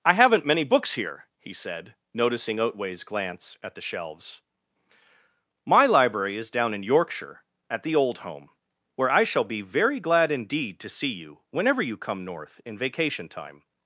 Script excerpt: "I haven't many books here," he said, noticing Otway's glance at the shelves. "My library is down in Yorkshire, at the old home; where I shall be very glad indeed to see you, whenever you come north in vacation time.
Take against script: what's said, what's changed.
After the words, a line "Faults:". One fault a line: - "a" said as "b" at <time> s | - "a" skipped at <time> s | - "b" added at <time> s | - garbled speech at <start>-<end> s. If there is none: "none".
"I haven't many books here," he said, noticing Otway's glance at the shelves. "My library is down in Yorkshire, at the old home; where I shall be very glad indeed to see you, whenever you come north in vacation time.
Faults:
none